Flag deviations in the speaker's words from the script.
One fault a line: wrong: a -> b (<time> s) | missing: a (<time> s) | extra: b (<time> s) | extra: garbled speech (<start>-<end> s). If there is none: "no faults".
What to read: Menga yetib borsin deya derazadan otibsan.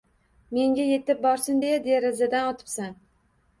no faults